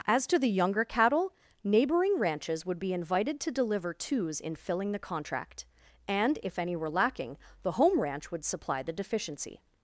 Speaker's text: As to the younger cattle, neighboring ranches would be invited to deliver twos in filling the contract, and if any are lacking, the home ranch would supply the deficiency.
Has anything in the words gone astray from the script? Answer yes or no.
yes